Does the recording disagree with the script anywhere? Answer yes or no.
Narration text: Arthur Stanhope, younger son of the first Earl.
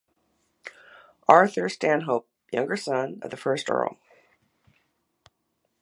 no